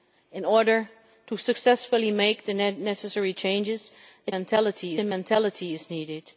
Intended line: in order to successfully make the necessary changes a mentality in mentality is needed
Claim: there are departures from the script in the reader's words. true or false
false